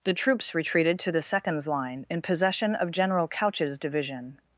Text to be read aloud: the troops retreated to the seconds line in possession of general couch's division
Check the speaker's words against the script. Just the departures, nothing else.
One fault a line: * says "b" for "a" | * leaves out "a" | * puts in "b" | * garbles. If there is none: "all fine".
all fine